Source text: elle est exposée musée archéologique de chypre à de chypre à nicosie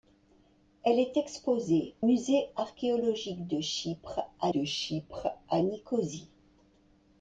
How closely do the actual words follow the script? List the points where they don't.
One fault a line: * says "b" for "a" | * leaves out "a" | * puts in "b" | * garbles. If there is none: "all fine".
all fine